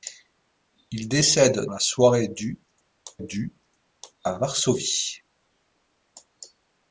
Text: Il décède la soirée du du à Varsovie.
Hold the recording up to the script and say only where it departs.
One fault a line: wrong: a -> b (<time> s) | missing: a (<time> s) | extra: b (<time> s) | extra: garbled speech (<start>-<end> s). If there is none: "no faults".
no faults